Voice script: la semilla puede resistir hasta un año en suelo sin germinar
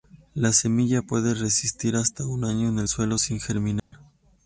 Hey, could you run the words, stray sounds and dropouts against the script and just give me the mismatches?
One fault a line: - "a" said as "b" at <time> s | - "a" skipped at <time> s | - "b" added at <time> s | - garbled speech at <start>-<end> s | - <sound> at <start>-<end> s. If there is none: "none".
- "el" added at 2.8 s
- dropout at 3.8-3.9 s